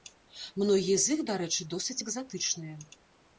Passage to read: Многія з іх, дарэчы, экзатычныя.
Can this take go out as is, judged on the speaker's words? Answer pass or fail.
fail